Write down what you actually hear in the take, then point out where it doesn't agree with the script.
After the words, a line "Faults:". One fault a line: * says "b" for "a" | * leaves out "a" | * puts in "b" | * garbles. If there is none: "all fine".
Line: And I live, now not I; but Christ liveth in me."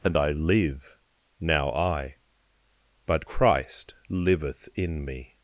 And I live, now I; but Christ liveth in me."
Faults:
* leaves out "not"